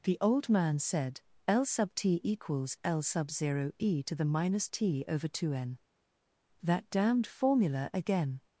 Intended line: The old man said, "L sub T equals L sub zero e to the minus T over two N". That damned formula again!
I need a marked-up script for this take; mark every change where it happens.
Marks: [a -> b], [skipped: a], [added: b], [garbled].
The old man said, "L sub T equals L sub zero e to the minus T over two N". That damned formula again!